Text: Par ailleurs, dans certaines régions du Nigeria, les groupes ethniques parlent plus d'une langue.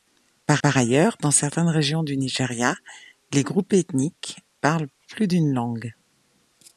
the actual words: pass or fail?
fail